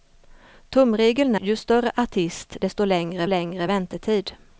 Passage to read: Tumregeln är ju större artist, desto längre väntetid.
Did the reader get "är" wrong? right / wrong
wrong